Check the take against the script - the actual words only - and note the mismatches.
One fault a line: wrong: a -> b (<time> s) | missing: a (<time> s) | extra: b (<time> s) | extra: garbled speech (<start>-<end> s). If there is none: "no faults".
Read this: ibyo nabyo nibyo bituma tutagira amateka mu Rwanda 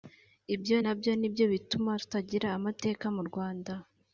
no faults